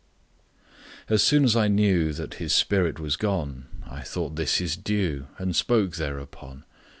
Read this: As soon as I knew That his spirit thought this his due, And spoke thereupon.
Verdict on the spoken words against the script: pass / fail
fail